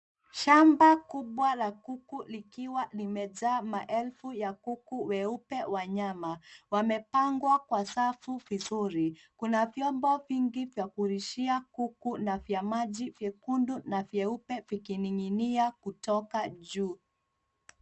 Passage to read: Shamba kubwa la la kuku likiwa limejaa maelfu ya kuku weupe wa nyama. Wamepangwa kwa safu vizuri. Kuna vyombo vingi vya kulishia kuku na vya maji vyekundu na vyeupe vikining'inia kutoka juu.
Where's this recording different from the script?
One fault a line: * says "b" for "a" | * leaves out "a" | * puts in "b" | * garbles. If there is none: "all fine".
* leaves out "la"